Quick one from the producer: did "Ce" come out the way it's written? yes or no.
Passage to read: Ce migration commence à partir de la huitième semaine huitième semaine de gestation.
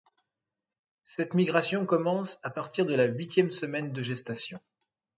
no